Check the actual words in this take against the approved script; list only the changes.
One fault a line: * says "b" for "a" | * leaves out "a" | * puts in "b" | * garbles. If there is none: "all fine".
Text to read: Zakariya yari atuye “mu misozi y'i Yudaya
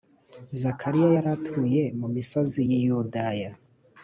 all fine